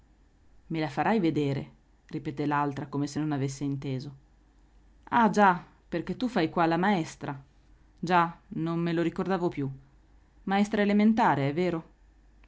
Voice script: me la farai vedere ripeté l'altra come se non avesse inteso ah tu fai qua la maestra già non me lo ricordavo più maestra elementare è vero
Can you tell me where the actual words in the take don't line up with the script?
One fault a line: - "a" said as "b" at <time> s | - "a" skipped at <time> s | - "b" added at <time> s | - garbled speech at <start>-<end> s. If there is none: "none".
- "già perché" added at 5.3 s